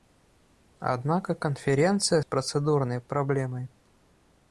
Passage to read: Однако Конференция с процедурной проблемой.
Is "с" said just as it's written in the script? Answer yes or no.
yes